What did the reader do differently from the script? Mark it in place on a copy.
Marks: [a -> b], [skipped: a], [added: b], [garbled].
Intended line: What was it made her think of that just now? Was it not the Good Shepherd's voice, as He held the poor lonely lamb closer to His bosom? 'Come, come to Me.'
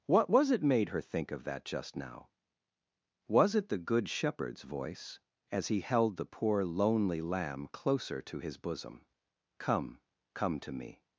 What was it made her think of that just now? Was it [skipped: not] the Good Shepherd's voice, as He held the poor lonely lamb closer to His bosom? 'Come, come to Me.'